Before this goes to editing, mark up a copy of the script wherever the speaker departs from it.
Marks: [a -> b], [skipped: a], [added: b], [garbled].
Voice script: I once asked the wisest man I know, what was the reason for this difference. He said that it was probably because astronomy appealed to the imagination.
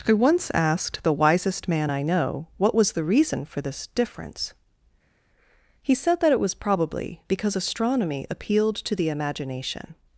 I once asked the wisest man I know, what was the reason for this difference. He said that it was probably because astronomy appealed to the imagination.